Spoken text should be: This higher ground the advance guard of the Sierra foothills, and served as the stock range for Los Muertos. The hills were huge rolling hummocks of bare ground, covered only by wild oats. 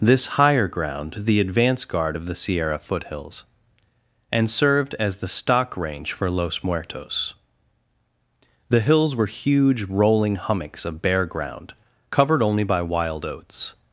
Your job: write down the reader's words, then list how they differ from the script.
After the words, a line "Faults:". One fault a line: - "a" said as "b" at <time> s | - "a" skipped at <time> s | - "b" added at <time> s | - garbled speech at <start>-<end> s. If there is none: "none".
This higher ground the advance guard of the Sierra foothills, and served as the stock range for Los Muertos. The hills were huge rolling hummocks of bare ground, covered only by wild oats.
Faults:
none